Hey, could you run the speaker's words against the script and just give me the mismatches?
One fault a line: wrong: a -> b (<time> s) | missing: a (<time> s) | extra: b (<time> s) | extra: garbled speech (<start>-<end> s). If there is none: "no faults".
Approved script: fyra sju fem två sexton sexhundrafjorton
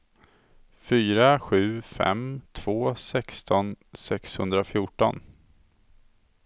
no faults